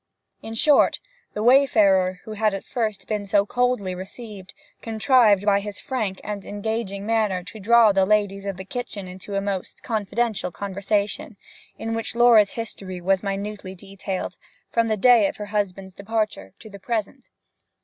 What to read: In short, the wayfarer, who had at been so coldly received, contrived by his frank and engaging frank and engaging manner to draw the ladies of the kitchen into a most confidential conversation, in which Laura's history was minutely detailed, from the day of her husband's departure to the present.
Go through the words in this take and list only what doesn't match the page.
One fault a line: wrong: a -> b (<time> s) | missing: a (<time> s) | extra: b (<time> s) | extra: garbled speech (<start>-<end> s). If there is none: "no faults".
extra: first (2.6 s)
missing: frank and engaging (7.0 s)